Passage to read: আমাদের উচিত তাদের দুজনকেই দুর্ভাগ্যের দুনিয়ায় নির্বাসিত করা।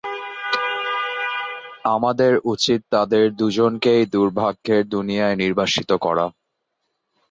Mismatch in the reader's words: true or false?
false